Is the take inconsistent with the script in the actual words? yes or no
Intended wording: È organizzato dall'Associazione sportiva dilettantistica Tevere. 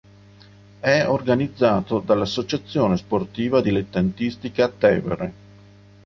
no